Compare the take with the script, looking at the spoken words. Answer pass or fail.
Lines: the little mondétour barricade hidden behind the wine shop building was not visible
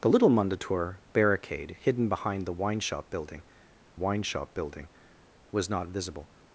fail